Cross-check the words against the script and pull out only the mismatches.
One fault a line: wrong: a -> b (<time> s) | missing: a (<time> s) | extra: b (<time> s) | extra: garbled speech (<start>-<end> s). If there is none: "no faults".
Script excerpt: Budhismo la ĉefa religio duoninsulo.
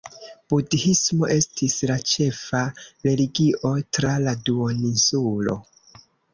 extra: estis (1.3 s)
extra: tra la (4.0 s)